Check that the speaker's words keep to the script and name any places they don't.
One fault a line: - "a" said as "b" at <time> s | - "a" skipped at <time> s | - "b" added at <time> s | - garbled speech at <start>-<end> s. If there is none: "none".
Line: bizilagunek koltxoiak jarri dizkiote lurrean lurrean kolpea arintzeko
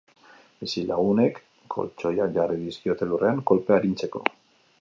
- "lurrean" skipped at 3.4 s